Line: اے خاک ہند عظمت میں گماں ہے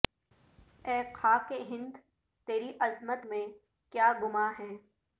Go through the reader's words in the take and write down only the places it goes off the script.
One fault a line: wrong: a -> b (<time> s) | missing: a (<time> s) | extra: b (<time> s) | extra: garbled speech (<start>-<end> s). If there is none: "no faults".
extra: تیری (2.5 s)
extra: کیا (3.9 s)